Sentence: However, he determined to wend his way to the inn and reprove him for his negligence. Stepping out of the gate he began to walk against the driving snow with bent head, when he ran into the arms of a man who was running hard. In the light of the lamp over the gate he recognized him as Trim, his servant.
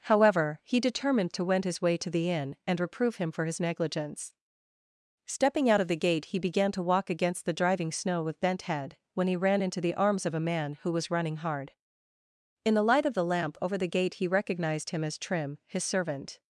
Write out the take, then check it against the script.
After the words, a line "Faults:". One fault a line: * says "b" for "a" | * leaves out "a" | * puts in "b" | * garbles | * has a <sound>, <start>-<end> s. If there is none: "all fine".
However, he determined to wend his way to the inn and reprove him for his negligence. Stepping out of the gate he began to walk against the driving snow with bent head, when he ran into the arms of a man who was running hard. In the light of the lamp over the gate he recognized him as Trim, his servant.
Faults:
all fine